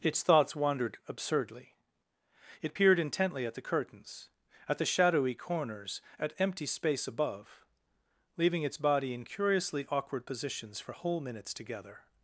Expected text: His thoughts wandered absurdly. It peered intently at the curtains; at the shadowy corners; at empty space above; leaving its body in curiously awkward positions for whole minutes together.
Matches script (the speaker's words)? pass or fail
fail